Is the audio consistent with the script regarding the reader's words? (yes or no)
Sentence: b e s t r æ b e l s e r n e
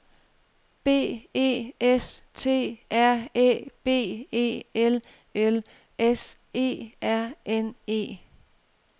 no